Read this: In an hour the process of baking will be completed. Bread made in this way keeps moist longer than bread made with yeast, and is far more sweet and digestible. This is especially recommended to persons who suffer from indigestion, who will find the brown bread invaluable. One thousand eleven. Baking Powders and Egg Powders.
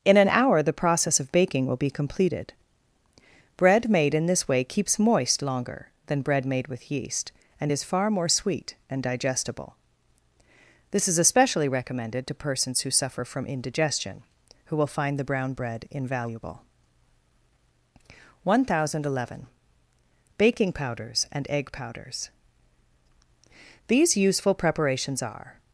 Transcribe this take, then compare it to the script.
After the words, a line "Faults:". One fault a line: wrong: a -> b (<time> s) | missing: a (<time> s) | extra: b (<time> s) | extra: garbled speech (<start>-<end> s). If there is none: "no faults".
In an hour the process of baking will be completed. Bread made in this way keeps moist longer than bread made with yeast, and is far more sweet and digestible. This is especially recommended to persons who suffer from indigestion, who will find the brown bread invaluable. One thousand eleven. Baking Powders and Egg Powders. These useful preparations are
Faults:
extra: These useful preparations are (23.9 s)